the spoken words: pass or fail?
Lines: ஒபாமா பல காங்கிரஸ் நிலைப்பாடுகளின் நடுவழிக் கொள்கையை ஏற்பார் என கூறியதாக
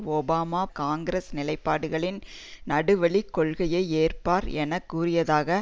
fail